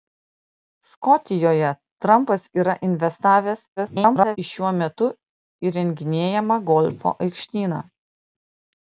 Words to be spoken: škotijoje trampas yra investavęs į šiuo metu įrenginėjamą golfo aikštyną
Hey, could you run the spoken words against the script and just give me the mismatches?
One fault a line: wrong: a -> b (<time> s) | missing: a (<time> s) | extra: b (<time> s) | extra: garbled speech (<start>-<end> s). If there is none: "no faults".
extra: garbled speech (3.8-4.4 s)